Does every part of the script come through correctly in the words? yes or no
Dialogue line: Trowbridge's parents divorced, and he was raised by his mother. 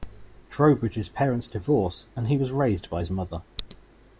yes